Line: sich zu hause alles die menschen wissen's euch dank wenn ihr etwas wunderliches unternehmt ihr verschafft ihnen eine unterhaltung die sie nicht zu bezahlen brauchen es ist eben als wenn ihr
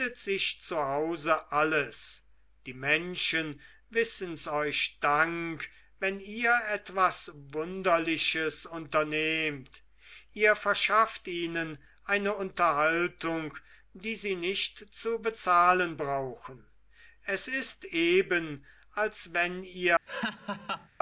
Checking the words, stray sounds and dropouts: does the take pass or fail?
fail